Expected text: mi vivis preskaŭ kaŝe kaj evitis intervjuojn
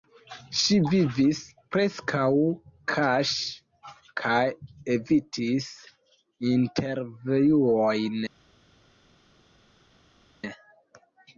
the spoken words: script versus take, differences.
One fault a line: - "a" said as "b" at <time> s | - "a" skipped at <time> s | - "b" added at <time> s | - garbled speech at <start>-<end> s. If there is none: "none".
- "mi" said as "ŝi" at 0.6 s